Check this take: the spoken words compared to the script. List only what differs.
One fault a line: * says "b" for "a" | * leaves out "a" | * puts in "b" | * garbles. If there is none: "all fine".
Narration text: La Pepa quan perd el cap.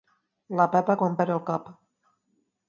all fine